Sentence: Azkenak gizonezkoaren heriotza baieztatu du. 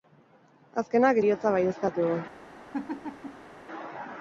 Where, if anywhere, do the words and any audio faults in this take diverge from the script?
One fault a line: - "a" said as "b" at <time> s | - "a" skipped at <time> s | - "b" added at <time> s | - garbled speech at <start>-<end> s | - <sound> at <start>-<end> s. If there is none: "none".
- "gizonezkoaren" skipped at 1.2 s
- laugh at 2.7-3.5 s